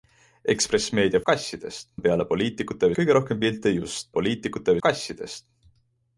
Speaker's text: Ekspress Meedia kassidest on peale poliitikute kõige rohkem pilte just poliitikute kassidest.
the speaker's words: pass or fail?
pass